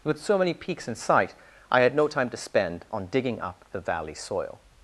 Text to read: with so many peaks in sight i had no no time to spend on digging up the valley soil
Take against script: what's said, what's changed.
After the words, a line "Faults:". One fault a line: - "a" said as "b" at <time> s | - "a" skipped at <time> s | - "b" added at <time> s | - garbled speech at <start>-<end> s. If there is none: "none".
with so many peaks in sight i had no time to spend on digging up the valley soil
Faults:
- "no" skipped at 2.1 s